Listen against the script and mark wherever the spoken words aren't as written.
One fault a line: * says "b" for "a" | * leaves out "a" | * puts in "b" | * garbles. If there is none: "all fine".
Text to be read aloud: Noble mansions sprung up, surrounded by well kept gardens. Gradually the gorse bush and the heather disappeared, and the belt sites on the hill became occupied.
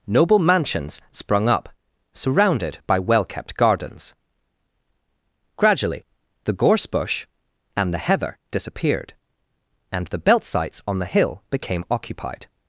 all fine